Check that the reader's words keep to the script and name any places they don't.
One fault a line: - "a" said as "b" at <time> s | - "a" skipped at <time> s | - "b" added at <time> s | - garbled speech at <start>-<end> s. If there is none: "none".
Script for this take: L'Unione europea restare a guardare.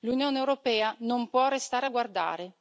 - "non può" added at 1.0 s